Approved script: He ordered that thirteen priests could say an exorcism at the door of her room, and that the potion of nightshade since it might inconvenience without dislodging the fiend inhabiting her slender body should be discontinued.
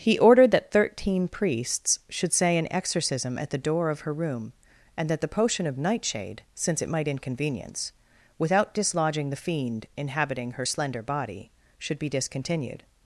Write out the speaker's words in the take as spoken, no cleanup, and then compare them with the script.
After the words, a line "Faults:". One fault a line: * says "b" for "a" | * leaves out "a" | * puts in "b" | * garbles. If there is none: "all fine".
He ordered that thirteen priests should say an exorcism at the door of her room, and that the potion of nightshade since it might inconvenience without dislodging the fiend inhabiting her slender body should be discontinued.
Faults:
* says "should" for "could"